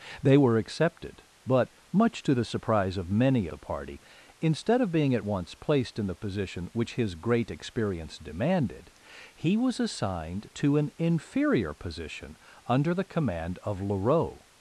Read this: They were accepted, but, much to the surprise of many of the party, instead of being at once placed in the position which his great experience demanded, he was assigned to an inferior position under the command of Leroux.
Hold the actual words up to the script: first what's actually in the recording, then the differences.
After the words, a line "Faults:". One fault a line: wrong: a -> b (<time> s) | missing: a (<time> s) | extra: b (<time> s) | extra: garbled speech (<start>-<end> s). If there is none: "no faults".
They were accepted, but, much to the surprise of many the party, instead of being at once placed in the position which his great experience demanded, he was assigned to an inferior position under the command of Leroux.
Faults:
missing: of (3.5 s)